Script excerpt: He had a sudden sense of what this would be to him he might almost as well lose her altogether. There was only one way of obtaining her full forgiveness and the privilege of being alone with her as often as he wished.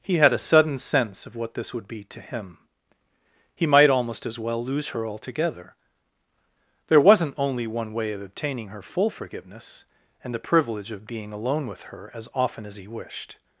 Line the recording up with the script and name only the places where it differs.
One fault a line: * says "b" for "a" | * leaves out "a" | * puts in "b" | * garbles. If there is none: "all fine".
* says "wasn't" for "was"